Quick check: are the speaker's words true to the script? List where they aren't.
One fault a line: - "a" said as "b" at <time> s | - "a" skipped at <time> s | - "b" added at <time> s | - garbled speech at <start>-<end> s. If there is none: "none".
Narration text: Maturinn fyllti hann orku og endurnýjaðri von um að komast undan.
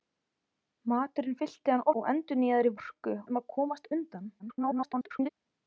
- "orku" skipped at 1.9 s
- "von" said as "orku" at 2.8 s
- garbled speech at 4.4-5.3 s